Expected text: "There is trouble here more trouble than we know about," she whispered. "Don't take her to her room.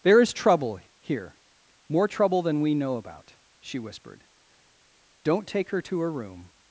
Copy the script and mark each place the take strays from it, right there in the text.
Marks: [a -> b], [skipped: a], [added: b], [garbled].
"There is trouble here more trouble than we know about," she whispered. "Don't take her to her room.